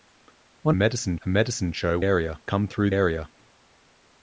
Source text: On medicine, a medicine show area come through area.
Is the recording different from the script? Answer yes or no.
no